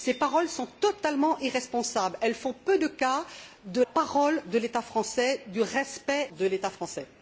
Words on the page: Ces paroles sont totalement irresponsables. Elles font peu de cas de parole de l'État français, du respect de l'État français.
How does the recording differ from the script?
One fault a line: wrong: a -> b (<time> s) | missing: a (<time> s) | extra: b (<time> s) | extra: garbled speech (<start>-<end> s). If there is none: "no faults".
no faults